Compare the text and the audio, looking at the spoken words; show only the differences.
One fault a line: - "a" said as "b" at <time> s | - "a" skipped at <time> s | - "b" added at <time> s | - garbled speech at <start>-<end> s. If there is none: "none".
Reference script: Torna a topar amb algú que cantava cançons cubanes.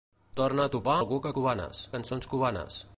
- "amb" skipped at 0.9 s
- "cantava" said as "cubanes" at 1.4 s